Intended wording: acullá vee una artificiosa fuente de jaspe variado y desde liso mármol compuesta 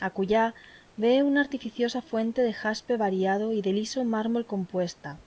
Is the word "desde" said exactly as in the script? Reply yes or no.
no